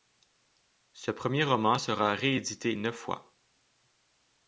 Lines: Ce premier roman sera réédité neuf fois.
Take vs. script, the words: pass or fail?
pass